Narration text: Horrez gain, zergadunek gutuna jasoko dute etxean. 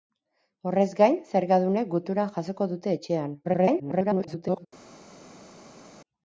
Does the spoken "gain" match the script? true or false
true